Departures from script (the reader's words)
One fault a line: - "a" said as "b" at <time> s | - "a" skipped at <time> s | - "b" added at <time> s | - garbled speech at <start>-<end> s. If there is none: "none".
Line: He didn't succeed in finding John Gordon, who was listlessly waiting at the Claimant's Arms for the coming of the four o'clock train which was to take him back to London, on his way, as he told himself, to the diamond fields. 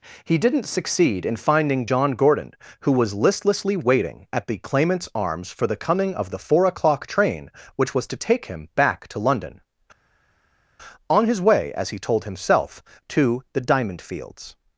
none